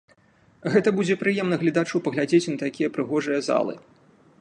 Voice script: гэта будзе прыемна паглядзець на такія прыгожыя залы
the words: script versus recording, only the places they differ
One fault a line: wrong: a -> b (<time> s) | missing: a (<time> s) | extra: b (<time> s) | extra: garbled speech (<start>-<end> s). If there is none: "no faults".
extra: гледачу (1.6 s)